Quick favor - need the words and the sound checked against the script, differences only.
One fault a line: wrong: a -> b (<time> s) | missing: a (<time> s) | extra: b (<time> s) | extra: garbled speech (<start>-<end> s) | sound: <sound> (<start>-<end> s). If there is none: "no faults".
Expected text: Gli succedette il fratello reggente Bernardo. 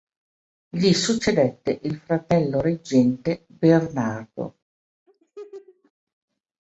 sound: laugh (5.1-5.9 s)